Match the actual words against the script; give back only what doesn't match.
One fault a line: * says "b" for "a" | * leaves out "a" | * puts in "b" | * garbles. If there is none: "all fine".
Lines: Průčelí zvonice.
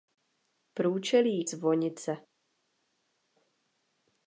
all fine